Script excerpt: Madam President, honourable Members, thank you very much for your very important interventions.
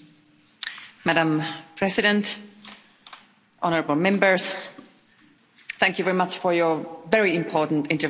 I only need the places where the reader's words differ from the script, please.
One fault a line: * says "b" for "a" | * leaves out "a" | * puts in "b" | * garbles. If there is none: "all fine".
all fine